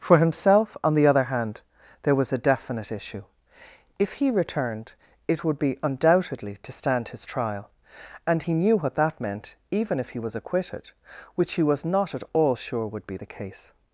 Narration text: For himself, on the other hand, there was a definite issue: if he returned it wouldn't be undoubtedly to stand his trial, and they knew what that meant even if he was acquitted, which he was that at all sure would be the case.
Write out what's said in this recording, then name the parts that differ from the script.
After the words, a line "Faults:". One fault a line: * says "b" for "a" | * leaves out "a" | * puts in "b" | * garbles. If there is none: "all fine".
For himself, on the other hand, there was a definite issue: if he returned it would be undoubtedly to stand his trial, and he knew what that meant even if he was acquitted, which he was not at all sure would be the case.
Faults:
* says "would" for "wouldn't"
* says "he" for "they"
* says "not" for "that"